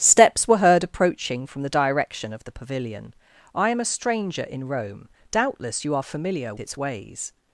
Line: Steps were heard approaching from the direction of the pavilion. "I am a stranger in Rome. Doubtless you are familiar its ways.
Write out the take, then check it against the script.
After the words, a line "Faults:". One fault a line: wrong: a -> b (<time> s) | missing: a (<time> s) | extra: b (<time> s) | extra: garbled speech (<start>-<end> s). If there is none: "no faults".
Steps were heard approaching from the direction of the pavilion. "I am a stranger in Rome. Doubtless you are familiar its ways.
Faults:
no faults